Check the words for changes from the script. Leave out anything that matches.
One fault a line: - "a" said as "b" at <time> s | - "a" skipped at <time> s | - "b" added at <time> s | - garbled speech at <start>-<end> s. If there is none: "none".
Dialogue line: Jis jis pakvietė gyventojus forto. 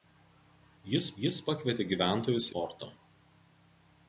none